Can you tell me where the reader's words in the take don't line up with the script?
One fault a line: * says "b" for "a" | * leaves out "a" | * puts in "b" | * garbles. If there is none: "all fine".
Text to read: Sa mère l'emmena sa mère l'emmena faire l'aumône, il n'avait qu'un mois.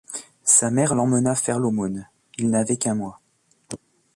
* leaves out "sa mère l'emmena"